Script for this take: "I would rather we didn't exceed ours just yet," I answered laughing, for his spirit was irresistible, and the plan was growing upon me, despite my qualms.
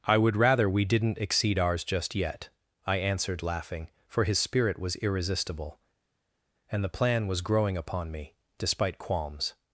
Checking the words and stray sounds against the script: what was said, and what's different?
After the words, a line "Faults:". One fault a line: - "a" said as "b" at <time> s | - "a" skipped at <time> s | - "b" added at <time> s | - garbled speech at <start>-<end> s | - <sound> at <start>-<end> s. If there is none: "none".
"I would rather we didn't exceed ours just yet," I answered laughing, for his spirit was irresistible, and the plan was growing upon me, despite qualms.
Faults:
- "my" skipped at 9.0 s